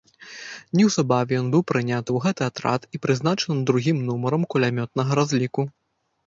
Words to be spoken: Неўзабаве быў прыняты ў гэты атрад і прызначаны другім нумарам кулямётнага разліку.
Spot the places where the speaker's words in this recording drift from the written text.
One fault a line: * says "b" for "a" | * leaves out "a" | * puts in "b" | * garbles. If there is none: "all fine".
* puts in "ён"